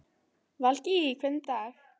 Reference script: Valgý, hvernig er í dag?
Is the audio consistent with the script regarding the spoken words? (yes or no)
yes